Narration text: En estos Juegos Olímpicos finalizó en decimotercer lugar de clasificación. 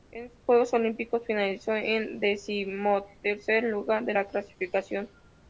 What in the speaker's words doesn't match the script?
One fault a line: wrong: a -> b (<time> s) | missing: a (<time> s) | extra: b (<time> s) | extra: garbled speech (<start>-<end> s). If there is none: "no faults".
extra: la (4.1 s)